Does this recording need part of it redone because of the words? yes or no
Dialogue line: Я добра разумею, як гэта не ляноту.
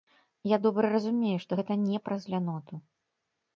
yes